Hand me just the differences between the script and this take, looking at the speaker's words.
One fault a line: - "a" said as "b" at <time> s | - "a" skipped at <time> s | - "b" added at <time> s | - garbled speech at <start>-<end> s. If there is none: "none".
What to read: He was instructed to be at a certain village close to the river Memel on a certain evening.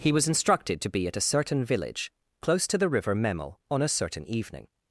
none